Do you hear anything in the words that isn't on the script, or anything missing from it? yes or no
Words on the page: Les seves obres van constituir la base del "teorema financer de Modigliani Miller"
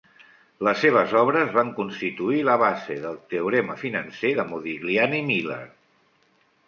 no